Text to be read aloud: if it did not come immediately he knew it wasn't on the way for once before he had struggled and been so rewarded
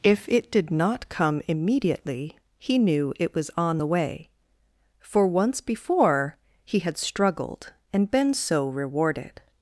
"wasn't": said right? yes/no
no